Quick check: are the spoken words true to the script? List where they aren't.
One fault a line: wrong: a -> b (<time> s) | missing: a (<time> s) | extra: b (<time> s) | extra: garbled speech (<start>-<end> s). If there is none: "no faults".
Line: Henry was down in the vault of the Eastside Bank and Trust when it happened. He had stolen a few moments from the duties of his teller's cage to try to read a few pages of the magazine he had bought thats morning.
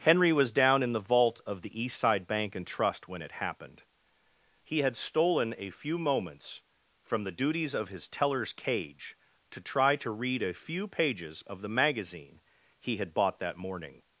wrong: thats -> that (13.4 s)